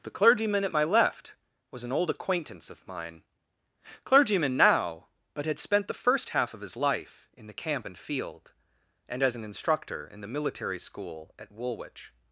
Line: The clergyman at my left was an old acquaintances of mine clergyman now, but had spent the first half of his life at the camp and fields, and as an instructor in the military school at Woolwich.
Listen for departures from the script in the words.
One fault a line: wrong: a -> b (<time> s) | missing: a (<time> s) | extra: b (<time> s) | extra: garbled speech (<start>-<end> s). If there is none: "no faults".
wrong: acquaintances -> acquaintance (2.1 s)
wrong: at -> in (7.3 s)
wrong: fields -> field (8.0 s)